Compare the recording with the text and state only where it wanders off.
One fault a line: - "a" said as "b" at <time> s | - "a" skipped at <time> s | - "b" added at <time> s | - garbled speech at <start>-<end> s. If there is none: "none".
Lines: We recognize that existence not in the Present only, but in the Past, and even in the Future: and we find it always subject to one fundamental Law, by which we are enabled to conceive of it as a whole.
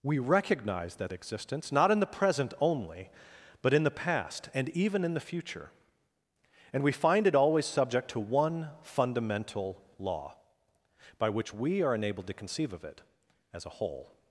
none